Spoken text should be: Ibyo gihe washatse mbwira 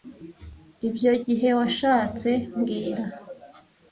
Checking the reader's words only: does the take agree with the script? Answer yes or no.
yes